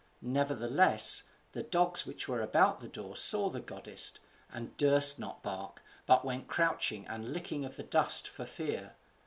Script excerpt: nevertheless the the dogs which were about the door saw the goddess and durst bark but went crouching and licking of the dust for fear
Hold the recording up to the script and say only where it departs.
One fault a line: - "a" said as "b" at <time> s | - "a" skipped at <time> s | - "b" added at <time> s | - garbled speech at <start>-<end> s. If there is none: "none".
- "the" skipped at 1.6 s
- "not" added at 5.2 s